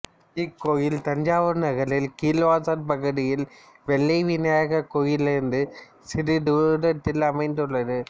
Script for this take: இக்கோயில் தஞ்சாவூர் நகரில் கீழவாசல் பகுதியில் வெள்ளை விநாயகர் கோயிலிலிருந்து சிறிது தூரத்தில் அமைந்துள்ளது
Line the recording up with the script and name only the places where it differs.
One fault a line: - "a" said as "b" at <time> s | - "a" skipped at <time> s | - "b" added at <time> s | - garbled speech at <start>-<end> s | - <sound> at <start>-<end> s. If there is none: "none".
none